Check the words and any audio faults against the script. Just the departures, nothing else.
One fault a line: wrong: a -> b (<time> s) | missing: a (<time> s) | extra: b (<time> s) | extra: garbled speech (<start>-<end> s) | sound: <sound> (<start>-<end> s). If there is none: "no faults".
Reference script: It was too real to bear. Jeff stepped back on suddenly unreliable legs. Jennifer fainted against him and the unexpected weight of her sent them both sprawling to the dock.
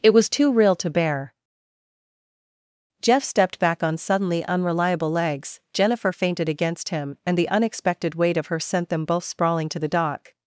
no faults